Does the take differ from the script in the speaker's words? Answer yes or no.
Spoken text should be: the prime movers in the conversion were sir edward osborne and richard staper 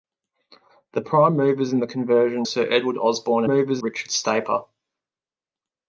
yes